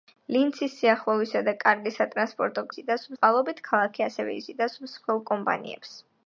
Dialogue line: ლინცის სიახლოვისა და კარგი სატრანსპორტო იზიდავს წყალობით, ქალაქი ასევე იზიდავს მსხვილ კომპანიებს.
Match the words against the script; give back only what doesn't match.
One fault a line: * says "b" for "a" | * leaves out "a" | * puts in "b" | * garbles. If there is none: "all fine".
all fine